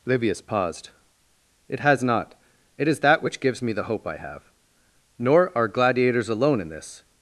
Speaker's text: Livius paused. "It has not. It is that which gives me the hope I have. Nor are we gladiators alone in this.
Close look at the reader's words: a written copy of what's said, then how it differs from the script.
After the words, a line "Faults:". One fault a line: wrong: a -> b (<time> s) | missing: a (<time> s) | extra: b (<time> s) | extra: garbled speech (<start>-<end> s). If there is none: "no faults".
Livius paused. "It has not. It is that which gives me the hope I have. Nor are gladiators alone in this.
Faults:
missing: we (5.7 s)